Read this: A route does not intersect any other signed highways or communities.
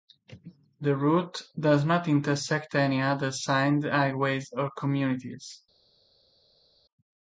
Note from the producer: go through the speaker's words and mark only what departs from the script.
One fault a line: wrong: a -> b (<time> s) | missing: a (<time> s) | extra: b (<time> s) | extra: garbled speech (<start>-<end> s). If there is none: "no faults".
wrong: A -> The (0.8 s)